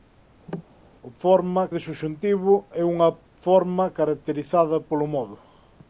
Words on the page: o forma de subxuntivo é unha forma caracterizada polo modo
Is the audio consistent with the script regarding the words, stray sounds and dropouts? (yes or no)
no